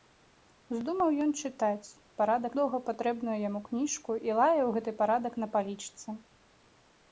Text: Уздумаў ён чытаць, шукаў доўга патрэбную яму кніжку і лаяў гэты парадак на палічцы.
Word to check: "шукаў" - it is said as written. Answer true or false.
false